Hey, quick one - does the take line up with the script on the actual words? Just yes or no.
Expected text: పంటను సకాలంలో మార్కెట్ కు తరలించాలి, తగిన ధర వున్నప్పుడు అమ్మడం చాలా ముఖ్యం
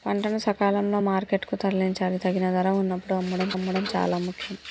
no